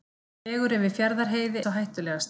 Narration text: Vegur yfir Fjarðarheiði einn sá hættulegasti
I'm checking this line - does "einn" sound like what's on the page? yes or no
no